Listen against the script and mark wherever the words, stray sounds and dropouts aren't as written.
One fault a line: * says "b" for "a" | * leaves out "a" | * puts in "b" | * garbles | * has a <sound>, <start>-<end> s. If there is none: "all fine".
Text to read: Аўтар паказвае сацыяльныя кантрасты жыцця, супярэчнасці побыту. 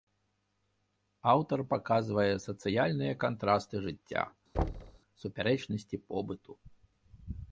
* has a thud, 4.5-5.0 s